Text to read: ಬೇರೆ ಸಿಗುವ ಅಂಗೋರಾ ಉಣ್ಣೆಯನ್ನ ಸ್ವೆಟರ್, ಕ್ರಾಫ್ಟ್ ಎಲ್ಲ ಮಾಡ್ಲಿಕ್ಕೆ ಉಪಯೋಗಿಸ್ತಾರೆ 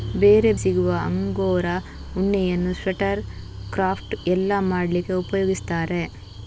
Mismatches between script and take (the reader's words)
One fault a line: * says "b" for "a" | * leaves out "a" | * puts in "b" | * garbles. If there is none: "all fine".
all fine